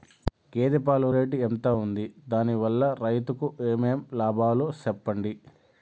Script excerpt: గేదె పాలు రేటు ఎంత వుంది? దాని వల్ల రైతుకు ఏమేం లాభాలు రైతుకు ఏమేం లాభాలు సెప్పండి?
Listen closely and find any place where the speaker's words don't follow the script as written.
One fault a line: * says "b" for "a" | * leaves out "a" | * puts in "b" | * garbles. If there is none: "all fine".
* leaves out "రైతుకు ఏమేం లాభాలు"